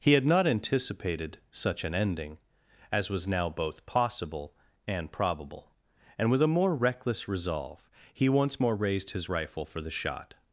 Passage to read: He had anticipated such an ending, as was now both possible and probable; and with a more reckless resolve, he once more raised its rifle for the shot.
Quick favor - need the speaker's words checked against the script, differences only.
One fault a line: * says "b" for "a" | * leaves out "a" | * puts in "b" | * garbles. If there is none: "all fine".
* puts in "not"
* says "his" for "its"